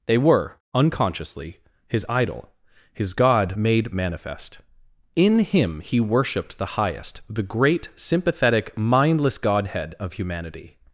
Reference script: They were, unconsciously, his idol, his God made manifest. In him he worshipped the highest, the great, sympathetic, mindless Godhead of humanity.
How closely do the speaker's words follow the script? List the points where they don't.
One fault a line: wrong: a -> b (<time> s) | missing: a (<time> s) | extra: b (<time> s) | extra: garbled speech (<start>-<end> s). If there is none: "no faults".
no faults